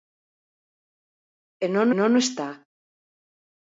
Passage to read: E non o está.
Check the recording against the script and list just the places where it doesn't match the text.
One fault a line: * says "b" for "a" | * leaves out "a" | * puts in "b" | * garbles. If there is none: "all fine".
* puts in "non"